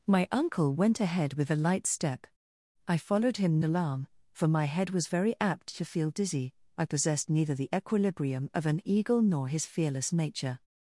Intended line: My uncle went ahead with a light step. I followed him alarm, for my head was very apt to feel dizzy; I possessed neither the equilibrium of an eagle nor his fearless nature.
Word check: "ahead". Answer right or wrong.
right